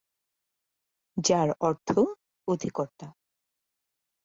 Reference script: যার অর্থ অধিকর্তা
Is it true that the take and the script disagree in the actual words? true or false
false